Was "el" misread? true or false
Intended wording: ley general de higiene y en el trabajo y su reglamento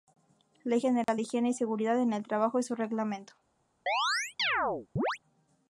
false